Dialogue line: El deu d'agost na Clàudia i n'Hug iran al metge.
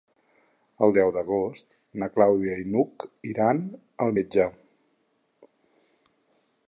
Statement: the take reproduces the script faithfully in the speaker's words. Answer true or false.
true